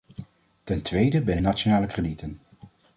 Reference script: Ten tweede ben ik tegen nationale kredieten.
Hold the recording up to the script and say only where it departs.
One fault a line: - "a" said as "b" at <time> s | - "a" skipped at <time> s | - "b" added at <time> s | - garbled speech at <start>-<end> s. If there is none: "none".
- "ik tegen" skipped at 1.4 s